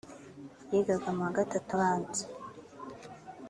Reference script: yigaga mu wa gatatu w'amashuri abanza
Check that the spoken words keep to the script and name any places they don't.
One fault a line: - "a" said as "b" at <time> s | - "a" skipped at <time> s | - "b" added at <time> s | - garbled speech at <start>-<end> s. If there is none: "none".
- "w'amashuri" skipped at 1.7 s